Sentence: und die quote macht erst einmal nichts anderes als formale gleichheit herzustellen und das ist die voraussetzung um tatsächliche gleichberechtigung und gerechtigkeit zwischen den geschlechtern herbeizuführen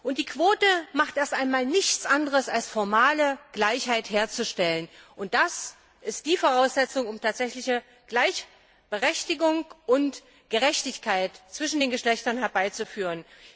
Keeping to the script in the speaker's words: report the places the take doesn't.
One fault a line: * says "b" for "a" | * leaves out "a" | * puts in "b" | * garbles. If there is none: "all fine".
all fine